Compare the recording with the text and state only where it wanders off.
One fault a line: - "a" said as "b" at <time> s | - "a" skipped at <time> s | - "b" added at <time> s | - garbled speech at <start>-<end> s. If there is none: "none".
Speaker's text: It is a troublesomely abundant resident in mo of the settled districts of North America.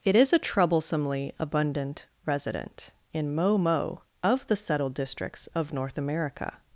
- "mo" added at 3.6 s